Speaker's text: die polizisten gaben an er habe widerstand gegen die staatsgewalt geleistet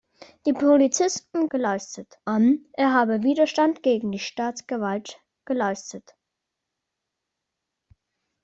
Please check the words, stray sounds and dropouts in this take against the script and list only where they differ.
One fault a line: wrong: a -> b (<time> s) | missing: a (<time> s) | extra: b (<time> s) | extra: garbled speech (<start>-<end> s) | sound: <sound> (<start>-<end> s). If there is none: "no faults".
wrong: gaben -> geleistet (1.5 s)